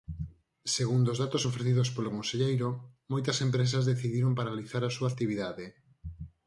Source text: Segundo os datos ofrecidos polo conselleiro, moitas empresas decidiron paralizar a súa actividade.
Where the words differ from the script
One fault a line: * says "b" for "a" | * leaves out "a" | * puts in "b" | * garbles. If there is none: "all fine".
all fine